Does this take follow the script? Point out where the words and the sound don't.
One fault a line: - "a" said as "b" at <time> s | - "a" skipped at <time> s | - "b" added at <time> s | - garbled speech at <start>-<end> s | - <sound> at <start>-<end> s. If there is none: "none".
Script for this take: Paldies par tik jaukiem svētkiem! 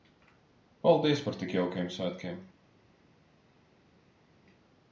none